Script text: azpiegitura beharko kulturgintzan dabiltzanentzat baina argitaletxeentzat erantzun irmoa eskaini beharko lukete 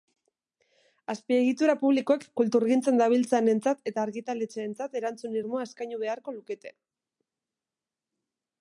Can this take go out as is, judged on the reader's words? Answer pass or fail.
fail